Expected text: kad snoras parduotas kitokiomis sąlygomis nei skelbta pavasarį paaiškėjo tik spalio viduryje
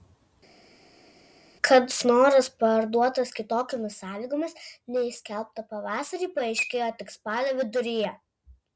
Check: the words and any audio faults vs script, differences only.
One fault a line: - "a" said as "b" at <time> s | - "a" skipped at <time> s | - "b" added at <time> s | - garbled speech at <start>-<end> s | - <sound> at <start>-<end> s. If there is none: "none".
none